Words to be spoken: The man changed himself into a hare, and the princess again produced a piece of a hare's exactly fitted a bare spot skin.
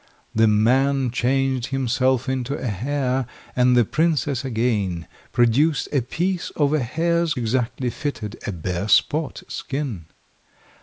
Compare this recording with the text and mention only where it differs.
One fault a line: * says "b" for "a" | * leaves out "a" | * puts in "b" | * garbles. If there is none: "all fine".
all fine